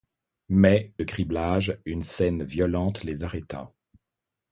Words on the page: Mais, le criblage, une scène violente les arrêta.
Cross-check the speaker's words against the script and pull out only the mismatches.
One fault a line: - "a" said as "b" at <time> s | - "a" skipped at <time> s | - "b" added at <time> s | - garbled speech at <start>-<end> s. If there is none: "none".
none